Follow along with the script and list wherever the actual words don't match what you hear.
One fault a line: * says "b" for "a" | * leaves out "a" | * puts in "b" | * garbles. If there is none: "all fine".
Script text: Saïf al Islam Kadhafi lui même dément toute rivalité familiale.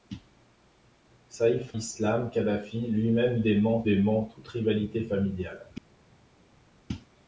* leaves out "al"
* puts in "dément"